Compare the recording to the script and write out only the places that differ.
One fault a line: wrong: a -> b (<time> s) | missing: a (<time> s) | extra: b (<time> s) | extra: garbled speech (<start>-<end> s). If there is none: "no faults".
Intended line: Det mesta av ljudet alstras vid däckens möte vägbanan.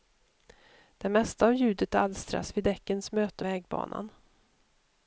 no faults